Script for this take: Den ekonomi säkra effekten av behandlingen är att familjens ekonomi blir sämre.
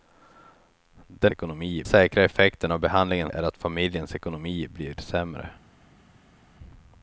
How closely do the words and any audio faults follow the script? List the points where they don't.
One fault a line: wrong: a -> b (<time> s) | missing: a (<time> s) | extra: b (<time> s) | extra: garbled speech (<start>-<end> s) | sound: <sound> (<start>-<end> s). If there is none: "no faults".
no faults